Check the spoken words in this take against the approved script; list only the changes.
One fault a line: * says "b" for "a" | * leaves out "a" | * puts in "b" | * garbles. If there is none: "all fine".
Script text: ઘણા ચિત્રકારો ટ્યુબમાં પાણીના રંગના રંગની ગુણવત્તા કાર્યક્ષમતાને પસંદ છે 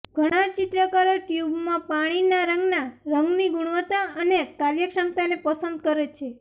* puts in "અને"
* puts in "કરે"